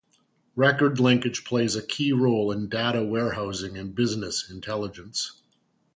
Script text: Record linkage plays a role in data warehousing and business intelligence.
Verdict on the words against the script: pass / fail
fail